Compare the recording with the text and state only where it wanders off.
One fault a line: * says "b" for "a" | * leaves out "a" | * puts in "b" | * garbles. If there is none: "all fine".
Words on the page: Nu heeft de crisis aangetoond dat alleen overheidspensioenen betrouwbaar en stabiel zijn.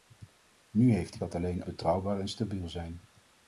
* leaves out "crisis aangetoond"
* leaves out "overheidspensioenen"